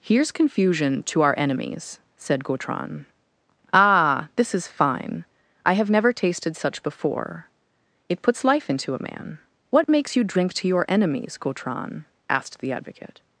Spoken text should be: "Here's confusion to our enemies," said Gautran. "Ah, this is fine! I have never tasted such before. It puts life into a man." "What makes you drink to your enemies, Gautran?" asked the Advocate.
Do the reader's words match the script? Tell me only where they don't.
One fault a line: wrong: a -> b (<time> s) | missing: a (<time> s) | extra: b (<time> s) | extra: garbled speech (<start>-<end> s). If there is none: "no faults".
no faults